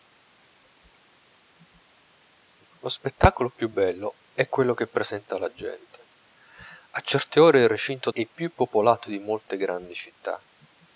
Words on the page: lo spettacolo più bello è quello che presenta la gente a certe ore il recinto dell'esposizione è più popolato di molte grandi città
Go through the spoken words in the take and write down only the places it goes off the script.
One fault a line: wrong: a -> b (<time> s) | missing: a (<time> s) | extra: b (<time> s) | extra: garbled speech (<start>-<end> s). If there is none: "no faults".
missing: dell'esposizione (8.1 s)